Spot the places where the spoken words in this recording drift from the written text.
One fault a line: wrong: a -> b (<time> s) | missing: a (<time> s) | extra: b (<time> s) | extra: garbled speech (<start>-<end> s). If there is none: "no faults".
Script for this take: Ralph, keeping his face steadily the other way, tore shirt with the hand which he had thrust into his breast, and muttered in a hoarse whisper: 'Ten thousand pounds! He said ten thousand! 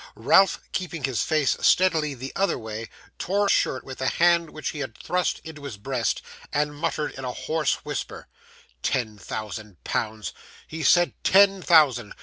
no faults